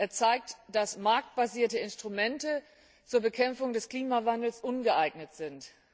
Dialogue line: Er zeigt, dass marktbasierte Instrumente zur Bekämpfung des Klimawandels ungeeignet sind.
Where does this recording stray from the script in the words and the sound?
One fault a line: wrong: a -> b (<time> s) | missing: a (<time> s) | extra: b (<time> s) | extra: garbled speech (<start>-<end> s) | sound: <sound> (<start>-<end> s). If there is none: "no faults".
no faults